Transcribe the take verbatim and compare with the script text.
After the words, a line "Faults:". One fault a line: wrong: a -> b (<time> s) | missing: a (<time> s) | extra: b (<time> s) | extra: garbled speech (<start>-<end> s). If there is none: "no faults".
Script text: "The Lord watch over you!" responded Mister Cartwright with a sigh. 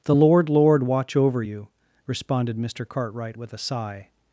"The Lord Lord watch over you!" responded Mister Cartwright with a sigh.
Faults:
extra: Lord (0.5 s)